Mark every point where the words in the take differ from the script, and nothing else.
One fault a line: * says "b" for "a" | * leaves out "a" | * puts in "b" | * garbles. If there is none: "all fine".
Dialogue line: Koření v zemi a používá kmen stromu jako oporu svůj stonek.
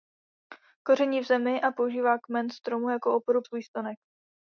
all fine